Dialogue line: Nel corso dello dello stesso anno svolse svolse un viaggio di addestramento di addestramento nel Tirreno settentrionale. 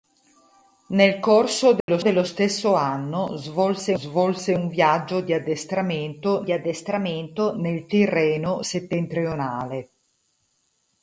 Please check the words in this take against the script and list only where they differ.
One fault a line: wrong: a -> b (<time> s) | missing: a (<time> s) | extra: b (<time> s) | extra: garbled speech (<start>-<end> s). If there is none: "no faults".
no faults